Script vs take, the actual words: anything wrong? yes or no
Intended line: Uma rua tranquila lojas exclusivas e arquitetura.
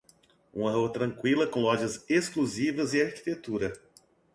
yes